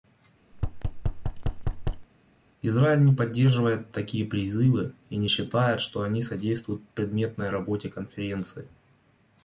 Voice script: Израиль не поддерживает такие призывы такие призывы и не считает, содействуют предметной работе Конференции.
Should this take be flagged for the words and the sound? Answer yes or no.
yes